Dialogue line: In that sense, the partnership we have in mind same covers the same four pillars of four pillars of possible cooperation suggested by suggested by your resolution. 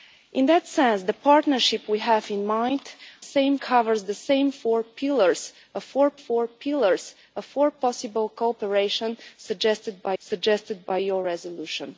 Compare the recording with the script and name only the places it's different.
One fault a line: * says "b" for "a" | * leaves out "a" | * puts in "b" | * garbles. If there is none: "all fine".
all fine